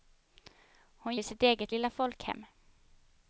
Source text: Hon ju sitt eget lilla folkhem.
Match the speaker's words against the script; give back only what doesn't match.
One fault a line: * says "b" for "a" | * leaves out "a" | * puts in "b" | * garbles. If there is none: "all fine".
all fine